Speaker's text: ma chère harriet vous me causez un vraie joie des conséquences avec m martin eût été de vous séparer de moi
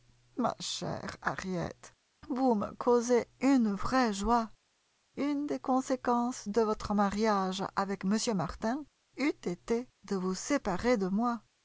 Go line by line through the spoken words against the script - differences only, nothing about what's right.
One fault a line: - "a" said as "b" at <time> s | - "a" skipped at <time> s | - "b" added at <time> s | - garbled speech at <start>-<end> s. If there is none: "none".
- "un" said as "une" at 3.4 s
- "une" added at 5.2 s
- "de votre mariage" added at 6.5 s